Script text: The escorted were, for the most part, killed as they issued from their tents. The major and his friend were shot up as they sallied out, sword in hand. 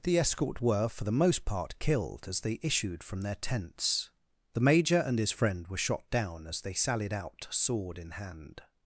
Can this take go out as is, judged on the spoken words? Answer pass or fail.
fail